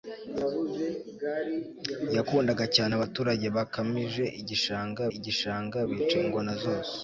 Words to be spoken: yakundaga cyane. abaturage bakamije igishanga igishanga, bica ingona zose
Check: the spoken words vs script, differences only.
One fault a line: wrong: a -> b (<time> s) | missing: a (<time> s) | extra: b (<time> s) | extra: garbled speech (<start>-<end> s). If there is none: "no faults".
no faults